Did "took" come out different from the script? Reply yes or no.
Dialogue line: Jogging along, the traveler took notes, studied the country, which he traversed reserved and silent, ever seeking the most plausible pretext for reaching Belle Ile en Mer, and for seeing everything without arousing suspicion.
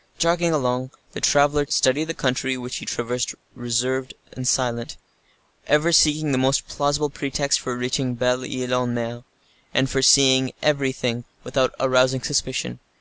yes